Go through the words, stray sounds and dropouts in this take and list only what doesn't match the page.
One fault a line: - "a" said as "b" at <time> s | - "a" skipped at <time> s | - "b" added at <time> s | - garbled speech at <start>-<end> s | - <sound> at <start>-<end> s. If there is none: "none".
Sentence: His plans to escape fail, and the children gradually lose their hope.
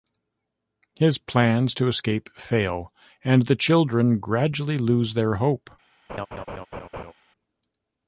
- laugh at 6.1-7.1 s